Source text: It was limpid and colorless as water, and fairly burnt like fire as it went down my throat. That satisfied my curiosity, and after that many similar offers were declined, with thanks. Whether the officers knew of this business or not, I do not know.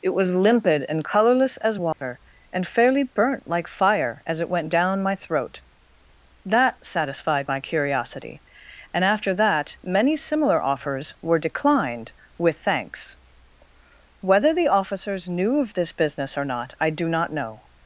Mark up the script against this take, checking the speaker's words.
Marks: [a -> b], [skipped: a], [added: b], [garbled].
It was limpid and colorless as water, and fairly burnt like fire as it went down my throat. That satisfied my curiosity, and after that many similar offers were declined, with thanks. Whether the officers knew of this business or not, I do not know.